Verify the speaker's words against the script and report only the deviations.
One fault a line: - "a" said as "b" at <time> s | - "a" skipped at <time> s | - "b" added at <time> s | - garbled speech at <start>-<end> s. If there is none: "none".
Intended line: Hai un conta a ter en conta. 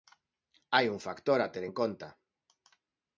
- "conta" said as "factor" at 1.1 s